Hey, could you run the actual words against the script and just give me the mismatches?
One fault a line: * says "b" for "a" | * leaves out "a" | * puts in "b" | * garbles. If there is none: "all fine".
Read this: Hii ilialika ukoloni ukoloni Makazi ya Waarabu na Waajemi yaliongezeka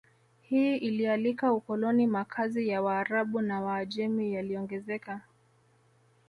* leaves out "ukoloni"